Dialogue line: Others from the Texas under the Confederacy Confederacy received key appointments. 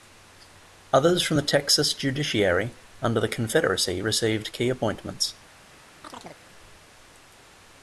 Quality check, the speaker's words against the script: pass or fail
fail